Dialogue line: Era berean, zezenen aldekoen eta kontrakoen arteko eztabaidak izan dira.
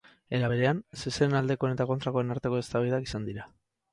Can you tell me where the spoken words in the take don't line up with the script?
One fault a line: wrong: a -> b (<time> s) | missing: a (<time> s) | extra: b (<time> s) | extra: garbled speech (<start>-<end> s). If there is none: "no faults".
no faults